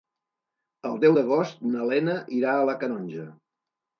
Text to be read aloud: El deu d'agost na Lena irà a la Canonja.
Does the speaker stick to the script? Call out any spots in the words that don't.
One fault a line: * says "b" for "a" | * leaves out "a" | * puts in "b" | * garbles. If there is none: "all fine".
all fine